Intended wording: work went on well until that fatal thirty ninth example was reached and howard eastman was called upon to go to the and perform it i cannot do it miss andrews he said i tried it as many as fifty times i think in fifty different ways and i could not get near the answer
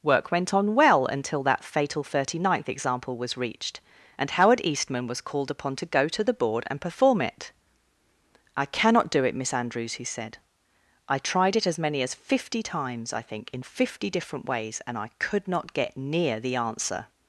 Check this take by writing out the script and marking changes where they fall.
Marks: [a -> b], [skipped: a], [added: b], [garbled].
work went on well until that fatal thirty ninth example was reached and howard eastman was called upon to go to the [added: board] and perform it i cannot do it miss andrews he said i tried it as many as fifty times i think in fifty different ways and i could not get near the answer